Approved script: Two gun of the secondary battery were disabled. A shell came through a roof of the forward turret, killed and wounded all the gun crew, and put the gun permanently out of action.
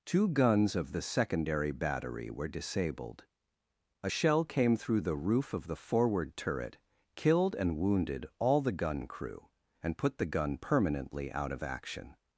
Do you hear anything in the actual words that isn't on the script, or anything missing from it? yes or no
yes